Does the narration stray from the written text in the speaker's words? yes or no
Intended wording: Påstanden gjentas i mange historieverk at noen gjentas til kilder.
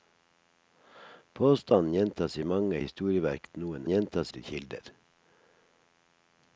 no